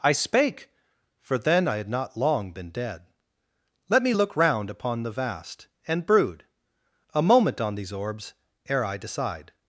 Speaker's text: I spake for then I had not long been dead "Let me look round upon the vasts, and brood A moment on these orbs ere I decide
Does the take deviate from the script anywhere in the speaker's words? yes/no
yes